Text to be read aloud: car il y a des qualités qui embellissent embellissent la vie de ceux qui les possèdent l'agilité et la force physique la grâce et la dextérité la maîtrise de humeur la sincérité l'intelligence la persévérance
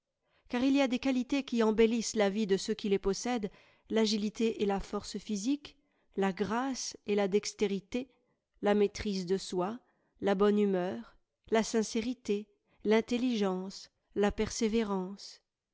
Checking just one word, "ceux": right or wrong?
right